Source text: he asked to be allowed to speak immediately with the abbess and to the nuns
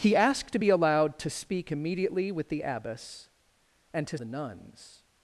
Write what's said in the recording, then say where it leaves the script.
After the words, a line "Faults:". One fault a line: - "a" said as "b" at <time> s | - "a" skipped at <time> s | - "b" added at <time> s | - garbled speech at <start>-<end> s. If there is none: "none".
he asked to be allowed to speak immediately with the abbess and to the nuns
Faults:
none